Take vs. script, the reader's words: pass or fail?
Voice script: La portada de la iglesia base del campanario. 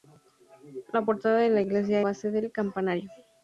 pass